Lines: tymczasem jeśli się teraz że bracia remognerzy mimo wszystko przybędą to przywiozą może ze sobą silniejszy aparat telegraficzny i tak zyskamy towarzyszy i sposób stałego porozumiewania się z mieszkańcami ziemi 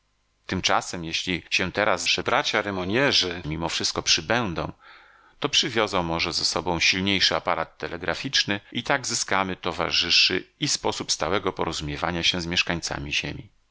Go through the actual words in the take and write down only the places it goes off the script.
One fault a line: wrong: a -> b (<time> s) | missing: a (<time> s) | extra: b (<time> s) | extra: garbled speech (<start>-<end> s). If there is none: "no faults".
no faults